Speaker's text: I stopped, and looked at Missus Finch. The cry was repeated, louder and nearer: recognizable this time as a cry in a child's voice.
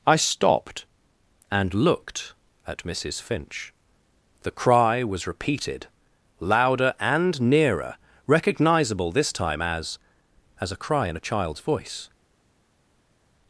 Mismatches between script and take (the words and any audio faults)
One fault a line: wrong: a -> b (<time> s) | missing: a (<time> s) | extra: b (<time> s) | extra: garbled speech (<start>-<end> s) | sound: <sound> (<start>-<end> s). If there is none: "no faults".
extra: as (10.6 s)